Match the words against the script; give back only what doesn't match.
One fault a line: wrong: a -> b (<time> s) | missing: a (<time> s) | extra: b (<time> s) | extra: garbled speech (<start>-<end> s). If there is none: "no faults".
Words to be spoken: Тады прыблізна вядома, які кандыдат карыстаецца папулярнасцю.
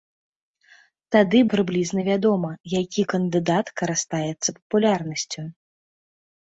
no faults